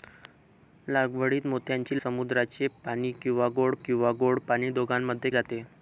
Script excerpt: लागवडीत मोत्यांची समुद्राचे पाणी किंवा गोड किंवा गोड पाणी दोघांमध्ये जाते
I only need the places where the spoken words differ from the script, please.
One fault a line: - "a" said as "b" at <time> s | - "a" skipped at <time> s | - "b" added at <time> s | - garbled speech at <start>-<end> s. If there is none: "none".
none